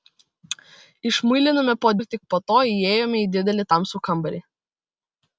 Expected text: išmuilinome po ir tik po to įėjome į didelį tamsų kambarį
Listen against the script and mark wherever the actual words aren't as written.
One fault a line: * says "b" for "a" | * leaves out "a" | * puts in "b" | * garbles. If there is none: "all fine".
all fine